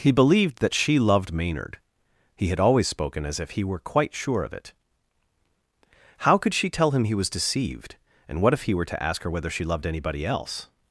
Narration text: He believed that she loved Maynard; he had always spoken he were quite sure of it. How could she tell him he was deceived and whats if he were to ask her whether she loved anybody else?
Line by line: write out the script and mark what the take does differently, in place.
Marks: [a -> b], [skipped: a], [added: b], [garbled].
He believed that she loved Maynard; he had always spoken [added: as if] he were quite sure of it. How could she tell him he was deceived and [whats -> what] if he were to ask her whether she loved anybody else?